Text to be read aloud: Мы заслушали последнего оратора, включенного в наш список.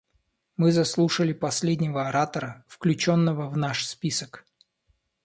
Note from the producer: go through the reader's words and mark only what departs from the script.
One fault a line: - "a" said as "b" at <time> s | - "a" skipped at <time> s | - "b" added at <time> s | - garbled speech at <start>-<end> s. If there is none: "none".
none